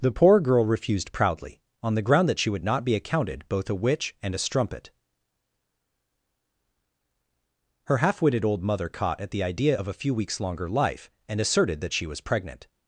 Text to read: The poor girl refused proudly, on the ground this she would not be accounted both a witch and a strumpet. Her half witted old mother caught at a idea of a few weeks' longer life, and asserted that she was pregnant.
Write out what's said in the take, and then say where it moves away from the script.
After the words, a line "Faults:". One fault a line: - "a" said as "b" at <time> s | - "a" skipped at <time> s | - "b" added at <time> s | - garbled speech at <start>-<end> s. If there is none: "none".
The poor girl refused proudly, on the ground that she would not be accounted both a witch and a strumpet. Her half witted old mother caught at the idea of a few weeks' longer life, and asserted that she was pregnant.
Faults:
- "this" said as "that" at 2.3 s
- "a" said as "the" at 9.3 s